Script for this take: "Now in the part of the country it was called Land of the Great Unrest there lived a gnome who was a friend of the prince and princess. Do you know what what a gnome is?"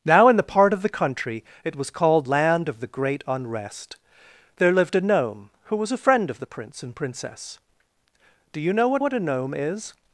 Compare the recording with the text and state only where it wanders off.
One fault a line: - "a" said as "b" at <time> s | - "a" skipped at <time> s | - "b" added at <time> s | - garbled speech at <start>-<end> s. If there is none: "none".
none